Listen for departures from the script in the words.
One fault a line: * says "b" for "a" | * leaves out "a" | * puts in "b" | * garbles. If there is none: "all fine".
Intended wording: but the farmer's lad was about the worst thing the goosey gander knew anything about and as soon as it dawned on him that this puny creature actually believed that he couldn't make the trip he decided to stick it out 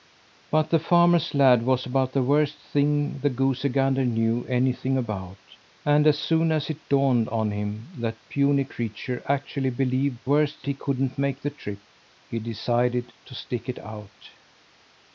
* leaves out "this"
* says "worst" for "that"